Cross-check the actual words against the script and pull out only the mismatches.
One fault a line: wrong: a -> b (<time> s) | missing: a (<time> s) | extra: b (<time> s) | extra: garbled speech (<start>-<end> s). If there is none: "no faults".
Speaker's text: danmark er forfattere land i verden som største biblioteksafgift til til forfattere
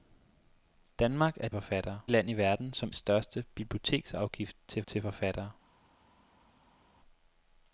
no faults